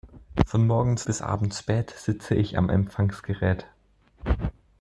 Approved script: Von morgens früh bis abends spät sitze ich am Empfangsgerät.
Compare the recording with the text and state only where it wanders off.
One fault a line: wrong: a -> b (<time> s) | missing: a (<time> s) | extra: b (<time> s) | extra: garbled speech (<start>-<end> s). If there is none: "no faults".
missing: früh (1.0 s)